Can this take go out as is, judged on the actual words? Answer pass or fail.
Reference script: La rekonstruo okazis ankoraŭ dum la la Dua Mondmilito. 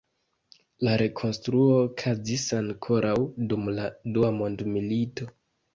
fail